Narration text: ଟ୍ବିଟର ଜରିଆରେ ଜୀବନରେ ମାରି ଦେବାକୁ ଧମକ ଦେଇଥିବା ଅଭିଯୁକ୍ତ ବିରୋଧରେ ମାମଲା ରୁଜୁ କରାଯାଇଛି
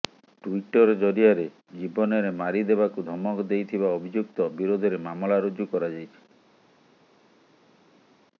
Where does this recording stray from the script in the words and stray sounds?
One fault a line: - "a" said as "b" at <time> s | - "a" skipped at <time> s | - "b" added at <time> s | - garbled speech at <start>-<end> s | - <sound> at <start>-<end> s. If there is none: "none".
none